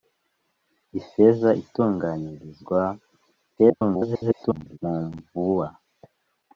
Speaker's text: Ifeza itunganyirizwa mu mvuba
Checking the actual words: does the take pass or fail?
fail